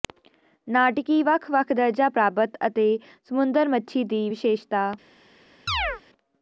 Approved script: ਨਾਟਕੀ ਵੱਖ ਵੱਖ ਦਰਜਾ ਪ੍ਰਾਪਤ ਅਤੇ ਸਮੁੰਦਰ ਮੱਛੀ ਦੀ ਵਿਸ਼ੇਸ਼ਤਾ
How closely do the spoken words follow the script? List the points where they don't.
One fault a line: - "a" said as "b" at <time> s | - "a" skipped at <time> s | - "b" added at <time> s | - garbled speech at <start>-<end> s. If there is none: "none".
none